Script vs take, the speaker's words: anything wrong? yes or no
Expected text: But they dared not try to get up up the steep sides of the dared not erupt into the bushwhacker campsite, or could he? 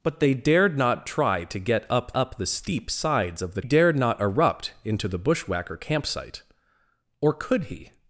no